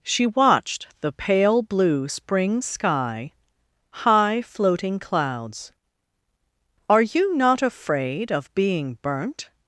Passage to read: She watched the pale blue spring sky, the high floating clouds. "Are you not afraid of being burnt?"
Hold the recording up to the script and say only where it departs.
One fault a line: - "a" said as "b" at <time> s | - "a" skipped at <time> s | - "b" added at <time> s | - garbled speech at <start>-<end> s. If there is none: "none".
- "the" skipped at 3.3 s